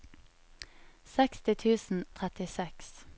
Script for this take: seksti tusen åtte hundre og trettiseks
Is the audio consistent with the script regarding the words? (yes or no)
no